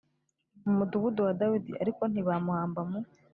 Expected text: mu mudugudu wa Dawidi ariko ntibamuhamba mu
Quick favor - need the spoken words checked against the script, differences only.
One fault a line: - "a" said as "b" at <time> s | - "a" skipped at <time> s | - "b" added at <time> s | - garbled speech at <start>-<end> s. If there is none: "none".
none